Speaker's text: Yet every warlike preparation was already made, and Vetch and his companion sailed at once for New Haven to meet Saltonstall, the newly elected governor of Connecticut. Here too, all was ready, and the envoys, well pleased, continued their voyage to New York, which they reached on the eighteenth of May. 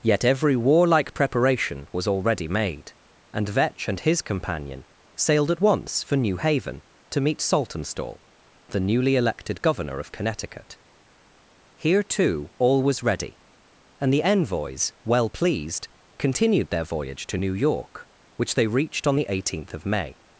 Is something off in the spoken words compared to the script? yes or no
no